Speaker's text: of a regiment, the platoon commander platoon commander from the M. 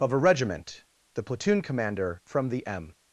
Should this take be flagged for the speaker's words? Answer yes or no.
yes